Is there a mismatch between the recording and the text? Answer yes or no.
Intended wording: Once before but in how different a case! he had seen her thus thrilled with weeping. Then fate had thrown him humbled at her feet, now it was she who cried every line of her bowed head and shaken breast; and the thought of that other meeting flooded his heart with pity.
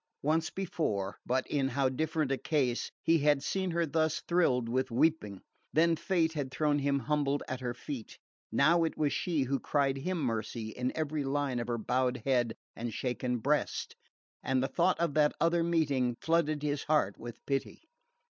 yes